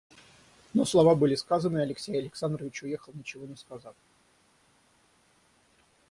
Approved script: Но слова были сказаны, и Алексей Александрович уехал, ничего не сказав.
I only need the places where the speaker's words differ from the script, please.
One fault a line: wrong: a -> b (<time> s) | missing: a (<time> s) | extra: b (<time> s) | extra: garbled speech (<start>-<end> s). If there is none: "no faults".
no faults